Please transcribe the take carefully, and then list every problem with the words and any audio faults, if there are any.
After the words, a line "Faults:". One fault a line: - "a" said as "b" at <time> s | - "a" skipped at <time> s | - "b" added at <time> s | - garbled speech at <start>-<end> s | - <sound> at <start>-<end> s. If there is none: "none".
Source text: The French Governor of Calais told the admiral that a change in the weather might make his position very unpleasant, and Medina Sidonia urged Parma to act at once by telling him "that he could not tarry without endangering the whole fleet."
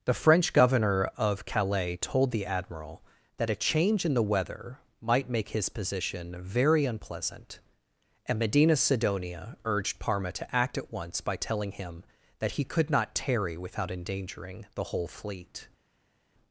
The French Governor of Calais told the admiral that a change in the weather might make his position very unpleasant, and Medina Sidonia urged Parma to act at once by telling him "that he could not tarry without endangering the whole fleet."
Faults:
none